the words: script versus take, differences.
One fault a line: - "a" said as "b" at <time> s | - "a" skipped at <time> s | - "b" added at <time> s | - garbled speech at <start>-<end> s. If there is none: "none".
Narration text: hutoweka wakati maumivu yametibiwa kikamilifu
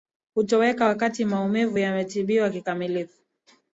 none